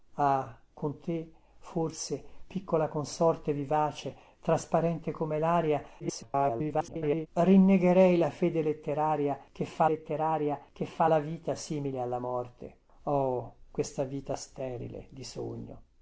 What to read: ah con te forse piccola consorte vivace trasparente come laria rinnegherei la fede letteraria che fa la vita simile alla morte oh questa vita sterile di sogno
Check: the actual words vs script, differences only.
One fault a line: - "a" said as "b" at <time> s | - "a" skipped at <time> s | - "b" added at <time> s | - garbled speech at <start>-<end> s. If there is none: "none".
- garbled speech at 6.0-7.3 s
- "letteraria che fa" added at 9.9 s